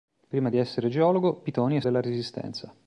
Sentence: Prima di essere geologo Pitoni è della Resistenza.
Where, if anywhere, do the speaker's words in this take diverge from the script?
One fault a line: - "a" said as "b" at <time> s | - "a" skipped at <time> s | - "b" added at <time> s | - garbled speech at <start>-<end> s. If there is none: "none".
none